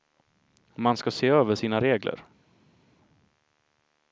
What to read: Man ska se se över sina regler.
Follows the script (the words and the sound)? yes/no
no